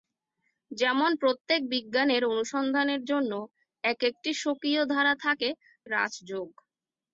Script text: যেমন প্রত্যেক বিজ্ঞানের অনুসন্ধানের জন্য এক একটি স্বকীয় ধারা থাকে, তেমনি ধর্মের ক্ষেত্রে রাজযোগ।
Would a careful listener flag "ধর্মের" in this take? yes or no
yes